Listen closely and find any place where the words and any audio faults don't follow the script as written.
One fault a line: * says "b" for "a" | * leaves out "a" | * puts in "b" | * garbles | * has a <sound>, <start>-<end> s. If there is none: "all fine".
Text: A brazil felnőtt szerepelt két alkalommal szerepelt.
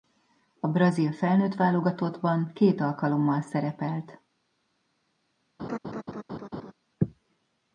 * says "válogatottban" for "szerepelt"
* has a laugh, 5.6-6.7 s